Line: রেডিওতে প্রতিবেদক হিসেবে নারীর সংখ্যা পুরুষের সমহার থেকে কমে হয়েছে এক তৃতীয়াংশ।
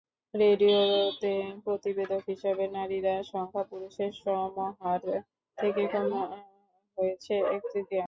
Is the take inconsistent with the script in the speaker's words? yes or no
no